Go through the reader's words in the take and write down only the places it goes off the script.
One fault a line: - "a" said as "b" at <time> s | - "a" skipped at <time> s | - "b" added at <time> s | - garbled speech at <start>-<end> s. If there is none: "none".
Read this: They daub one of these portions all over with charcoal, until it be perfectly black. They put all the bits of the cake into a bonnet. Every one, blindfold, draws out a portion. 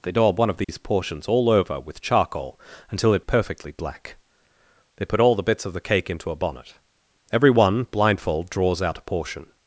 - "be" skipped at 3.2 s